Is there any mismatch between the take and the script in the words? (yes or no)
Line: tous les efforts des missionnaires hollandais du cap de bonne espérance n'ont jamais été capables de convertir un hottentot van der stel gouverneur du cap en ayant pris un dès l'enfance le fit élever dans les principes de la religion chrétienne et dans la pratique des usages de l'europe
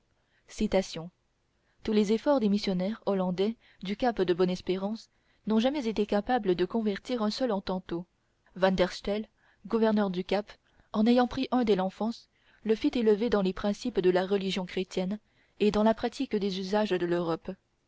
yes